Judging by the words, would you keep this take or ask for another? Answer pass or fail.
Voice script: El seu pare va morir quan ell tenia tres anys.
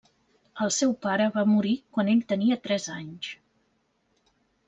pass